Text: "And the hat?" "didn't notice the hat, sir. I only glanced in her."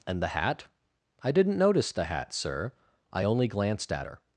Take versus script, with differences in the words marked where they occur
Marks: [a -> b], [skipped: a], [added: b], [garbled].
"And the hat?" [added: I] "didn't notice the hat, sir. I only glanced [in -> at] her."